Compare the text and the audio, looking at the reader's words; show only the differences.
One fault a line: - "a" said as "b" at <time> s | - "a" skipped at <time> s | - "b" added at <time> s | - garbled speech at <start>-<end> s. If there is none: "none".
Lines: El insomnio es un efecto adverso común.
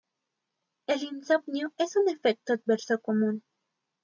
none